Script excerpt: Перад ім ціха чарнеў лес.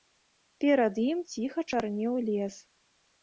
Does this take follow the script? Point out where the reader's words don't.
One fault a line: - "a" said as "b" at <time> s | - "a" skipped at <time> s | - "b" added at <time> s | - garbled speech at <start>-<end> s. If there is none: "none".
none